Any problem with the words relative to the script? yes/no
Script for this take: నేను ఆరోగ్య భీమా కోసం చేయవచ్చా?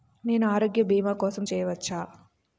no